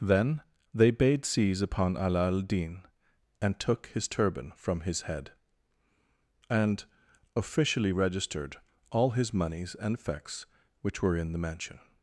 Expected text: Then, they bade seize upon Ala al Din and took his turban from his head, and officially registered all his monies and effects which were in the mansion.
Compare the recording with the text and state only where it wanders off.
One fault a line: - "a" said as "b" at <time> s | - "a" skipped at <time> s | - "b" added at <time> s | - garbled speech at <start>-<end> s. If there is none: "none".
none